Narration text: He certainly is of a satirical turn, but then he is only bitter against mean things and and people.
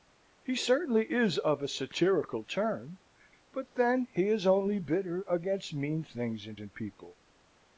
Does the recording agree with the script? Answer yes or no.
yes